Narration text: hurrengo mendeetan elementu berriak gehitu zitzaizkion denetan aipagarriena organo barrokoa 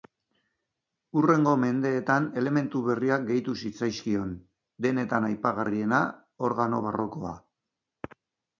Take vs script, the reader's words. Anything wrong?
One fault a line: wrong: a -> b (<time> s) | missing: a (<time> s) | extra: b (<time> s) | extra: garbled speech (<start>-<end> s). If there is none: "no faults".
no faults